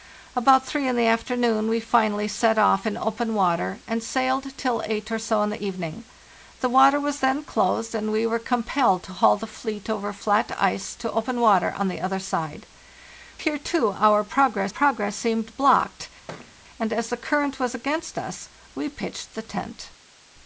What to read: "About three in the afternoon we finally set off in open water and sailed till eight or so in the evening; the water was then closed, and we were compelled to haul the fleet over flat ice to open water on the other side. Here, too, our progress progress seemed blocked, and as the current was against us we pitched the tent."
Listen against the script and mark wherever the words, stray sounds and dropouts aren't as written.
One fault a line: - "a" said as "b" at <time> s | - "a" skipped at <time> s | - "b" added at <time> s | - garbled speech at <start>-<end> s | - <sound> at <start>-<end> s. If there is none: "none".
- thud at 16.3-16.6 s